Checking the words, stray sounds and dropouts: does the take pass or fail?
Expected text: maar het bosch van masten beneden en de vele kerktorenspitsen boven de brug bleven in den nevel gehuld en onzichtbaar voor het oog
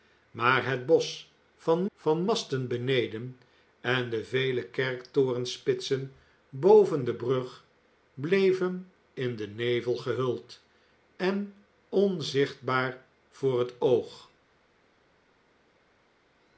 fail